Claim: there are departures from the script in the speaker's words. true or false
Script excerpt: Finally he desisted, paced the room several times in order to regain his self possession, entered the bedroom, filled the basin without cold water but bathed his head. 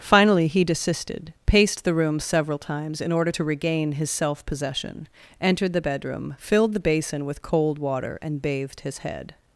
true